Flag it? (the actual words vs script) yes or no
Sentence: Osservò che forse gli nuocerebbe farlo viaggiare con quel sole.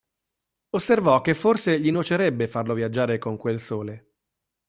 no